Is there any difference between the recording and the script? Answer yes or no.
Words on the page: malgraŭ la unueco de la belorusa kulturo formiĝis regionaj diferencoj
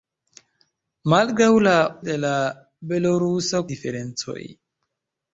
yes